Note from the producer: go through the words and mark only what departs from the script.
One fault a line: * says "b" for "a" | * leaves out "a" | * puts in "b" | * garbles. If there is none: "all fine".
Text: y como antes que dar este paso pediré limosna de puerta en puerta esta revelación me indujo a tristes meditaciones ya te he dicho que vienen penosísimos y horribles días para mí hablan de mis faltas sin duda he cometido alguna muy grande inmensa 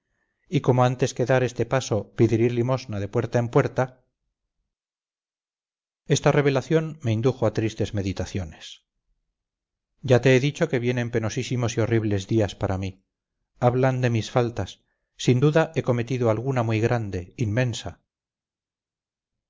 all fine